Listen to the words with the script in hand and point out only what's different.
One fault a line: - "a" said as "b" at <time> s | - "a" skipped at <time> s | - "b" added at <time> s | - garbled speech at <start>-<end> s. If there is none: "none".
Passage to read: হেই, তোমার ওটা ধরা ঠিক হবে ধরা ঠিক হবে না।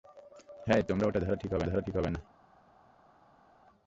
none